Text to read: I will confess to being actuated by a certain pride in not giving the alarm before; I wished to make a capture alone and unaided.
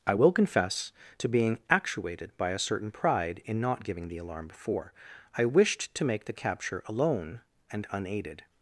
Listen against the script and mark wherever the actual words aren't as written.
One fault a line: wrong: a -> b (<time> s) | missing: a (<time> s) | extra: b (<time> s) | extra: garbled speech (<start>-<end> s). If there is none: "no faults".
wrong: a -> the (6.3 s)